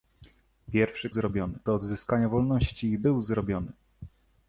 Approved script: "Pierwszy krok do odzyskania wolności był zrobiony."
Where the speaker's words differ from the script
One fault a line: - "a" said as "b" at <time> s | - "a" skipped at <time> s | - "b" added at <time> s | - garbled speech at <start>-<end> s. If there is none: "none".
- "krok" said as "zrobiony" at 1.1 s